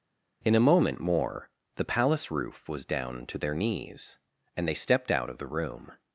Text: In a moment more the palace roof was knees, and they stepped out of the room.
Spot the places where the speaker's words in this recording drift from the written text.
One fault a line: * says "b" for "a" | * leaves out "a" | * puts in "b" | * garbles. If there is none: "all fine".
* puts in "down to their"